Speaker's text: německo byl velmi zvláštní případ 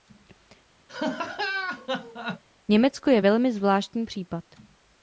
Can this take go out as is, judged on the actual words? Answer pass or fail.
fail